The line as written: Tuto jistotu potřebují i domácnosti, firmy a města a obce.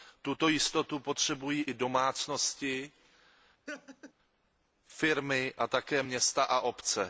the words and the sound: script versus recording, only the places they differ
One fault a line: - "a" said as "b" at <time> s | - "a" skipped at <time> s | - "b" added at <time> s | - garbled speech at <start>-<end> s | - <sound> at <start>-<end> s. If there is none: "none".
- laugh at 3.7-4.1 s
- "také" added at 5.7 s